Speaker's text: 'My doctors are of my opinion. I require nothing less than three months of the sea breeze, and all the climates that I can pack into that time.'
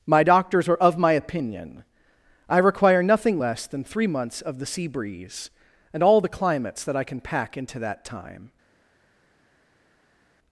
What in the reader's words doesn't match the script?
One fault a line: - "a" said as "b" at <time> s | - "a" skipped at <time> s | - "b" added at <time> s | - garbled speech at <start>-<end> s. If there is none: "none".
none